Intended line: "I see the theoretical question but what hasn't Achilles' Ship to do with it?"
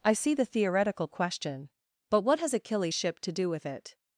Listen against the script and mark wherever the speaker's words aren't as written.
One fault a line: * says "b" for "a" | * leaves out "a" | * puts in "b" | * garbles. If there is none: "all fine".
* says "has" for "hasn't"